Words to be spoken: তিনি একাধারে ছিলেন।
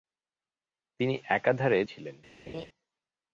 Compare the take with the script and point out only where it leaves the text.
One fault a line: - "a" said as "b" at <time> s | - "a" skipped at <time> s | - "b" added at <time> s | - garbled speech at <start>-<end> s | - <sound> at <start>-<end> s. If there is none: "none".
- laugh at 2.5-2.7 s